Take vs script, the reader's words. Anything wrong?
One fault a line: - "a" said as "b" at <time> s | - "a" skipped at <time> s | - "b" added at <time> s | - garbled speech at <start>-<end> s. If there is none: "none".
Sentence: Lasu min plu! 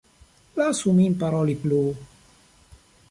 - "paroli" added at 1.2 s